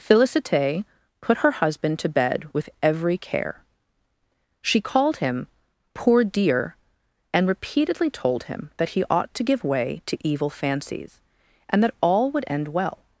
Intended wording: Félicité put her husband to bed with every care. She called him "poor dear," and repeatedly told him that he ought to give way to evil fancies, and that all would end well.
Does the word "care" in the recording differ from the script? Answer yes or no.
no